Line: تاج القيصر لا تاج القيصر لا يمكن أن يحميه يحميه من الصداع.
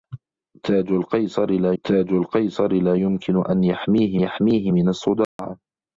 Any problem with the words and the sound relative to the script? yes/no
yes